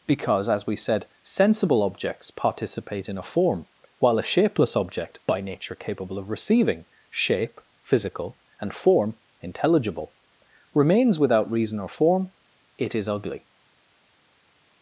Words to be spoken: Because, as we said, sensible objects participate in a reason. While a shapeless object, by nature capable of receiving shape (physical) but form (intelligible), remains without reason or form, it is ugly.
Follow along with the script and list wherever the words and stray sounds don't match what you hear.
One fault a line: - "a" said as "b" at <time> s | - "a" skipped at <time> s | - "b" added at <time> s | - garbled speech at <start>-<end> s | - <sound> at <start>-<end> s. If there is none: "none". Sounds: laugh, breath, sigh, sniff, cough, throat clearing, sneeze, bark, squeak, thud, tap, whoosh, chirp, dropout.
- "reason" said as "form" at 3.2 s
- "but" said as "and" at 8.6 s